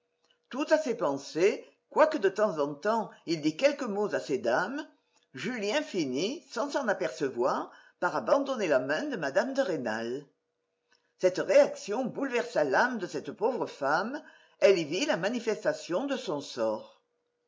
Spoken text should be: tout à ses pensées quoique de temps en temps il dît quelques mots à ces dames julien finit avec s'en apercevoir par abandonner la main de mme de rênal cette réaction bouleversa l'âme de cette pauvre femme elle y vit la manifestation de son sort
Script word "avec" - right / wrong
wrong